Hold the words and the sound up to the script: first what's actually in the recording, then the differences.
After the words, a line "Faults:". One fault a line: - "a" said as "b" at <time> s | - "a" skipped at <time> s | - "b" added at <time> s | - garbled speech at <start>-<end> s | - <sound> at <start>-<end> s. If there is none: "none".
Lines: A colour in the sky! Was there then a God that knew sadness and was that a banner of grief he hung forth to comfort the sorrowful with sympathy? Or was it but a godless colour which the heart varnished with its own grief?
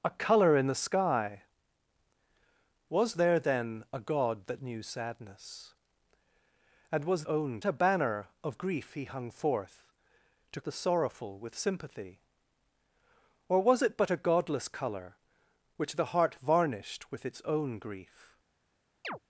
A colour in the sky! Was there then a God that knew sadness and was own a banner of grief he hung forth to the sorrowful with sympathy? Or was it but a godless colour which the heart varnished with its own grief?
Faults:
- "that" said as "own" at 7.3 s
- "comfort" skipped at 10.6 s
- chirp at 19.0-19.2 s